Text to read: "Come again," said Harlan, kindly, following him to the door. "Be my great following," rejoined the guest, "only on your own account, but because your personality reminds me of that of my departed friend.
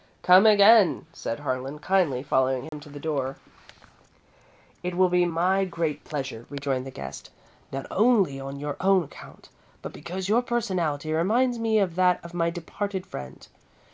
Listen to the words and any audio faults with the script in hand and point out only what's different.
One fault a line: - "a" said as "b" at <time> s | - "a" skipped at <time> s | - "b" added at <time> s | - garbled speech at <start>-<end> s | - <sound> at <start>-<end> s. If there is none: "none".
- dropout at 2.7-2.7 s
- "It will" added at 4.8 s
- "following" said as "pleasure" at 6.0 s
- "not" added at 7.7 s